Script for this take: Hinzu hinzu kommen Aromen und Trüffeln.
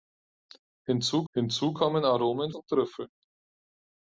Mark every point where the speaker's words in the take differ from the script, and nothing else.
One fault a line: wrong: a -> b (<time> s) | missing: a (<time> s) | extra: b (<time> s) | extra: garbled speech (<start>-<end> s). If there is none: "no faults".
no faults